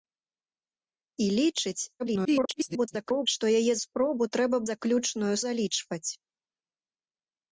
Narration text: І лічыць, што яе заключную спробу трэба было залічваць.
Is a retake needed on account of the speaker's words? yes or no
yes